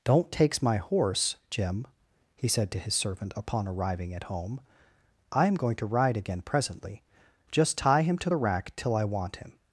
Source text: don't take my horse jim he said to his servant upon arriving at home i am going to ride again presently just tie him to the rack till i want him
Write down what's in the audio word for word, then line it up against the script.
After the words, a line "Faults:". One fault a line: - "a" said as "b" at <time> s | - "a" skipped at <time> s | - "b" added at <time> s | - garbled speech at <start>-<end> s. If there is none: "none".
don't takes my horse jim he said to his servant upon arriving at home i am going to ride again presently just tie him to the rack till i want him
Faults:
- "take" said as "takes" at 0.3 s